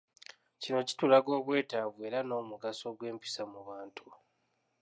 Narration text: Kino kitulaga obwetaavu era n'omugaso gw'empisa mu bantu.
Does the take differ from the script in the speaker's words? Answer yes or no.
no